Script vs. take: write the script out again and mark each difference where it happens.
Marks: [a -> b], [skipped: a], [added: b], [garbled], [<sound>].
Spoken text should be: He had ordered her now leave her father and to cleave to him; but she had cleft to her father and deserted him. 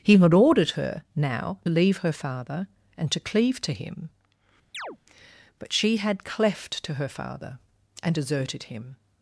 He had ordered her now leave her father and to cleave to him; [chirp] but she had cleft to her father and deserted him.